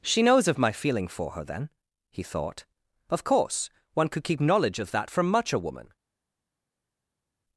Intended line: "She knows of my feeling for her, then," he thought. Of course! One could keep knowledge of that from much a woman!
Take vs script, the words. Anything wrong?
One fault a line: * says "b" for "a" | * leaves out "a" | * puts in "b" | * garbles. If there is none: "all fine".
all fine